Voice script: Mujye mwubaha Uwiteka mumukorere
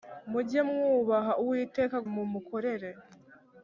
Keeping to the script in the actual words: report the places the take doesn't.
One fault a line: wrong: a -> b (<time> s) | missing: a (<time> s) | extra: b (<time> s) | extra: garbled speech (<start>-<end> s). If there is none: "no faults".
no faults